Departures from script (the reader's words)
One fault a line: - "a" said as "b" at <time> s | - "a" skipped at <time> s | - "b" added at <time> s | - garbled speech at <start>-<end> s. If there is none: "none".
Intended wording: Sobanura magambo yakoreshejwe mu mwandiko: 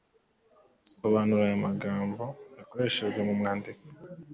- "aya" added at 1.5 s